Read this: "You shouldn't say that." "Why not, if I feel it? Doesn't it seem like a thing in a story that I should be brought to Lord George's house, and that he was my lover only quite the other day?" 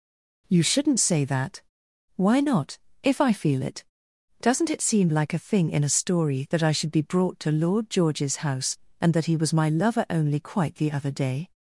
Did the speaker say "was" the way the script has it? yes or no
yes